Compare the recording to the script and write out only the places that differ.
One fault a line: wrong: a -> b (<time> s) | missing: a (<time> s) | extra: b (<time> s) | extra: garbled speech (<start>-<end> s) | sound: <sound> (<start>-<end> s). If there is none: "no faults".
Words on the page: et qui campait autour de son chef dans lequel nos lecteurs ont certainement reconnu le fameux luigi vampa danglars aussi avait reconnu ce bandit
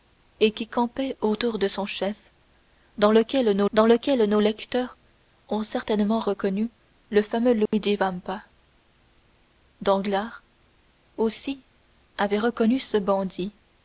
extra: dans lequel nos (3.7 s)
sound: dropout (7.7-7.7 s)